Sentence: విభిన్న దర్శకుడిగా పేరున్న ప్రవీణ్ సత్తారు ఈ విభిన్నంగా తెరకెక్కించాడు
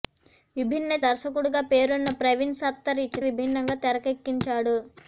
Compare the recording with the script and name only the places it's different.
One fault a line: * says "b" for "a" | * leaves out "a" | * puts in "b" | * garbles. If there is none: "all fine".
all fine